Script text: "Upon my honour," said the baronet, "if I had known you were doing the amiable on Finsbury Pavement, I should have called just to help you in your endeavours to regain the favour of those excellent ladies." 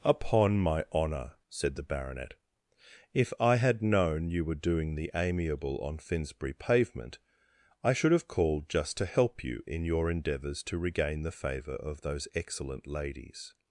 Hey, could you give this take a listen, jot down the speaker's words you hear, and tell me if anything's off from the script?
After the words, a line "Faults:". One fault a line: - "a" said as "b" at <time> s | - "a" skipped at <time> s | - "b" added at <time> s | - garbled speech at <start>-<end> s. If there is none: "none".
"Upon my honour," said the baronet, "if I had known you were doing the amiable on Finsbury Pavement, I should have called just to help you in your endeavours to regain the favour of those excellent ladies."
Faults:
none